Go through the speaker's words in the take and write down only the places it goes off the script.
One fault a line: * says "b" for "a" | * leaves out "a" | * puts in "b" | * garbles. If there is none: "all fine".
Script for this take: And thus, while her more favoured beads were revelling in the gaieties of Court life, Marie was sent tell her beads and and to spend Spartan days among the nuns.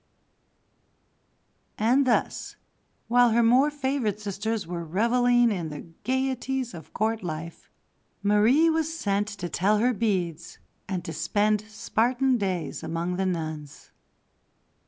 * says "sisters" for "beads"
* puts in "to"
* leaves out "and"